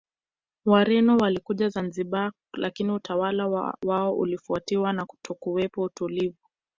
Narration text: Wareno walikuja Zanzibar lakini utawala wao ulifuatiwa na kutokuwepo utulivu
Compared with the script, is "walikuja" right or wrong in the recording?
right